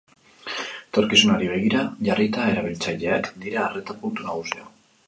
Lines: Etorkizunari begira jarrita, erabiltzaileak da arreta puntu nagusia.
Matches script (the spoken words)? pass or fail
fail